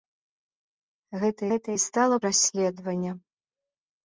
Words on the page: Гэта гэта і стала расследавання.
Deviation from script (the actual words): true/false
false